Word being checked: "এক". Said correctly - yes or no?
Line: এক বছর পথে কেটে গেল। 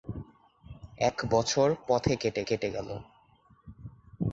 yes